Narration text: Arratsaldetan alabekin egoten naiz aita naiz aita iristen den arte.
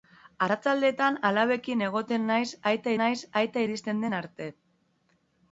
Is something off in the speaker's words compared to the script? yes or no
no